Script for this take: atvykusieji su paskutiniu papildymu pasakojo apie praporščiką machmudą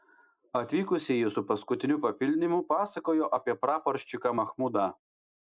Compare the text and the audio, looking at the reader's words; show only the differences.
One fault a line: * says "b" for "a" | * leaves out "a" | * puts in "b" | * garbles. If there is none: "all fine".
all fine